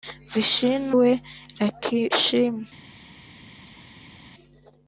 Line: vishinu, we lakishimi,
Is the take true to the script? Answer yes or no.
yes